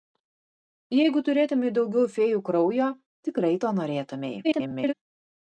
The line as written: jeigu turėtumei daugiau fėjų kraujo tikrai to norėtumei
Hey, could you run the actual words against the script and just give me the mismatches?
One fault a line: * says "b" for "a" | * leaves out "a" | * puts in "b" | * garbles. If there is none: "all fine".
* garbles